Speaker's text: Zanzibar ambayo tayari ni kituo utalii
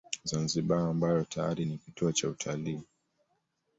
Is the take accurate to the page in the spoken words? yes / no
no